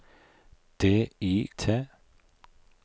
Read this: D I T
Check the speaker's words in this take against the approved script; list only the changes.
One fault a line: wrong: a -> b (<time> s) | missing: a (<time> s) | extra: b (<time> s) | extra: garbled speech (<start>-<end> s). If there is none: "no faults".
no faults